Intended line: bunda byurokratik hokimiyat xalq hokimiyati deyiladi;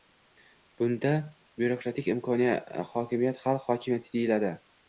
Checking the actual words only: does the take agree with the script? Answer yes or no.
yes